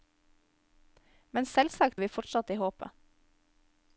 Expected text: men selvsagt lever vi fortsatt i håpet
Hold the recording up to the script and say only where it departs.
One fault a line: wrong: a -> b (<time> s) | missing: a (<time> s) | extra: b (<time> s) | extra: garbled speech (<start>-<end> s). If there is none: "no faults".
missing: lever (2.0 s)